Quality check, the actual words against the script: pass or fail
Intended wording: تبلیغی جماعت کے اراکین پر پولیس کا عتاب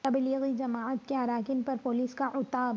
pass